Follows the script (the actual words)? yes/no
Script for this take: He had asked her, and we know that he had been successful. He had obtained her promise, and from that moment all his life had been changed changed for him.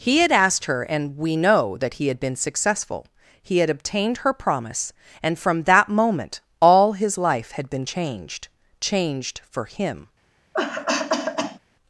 yes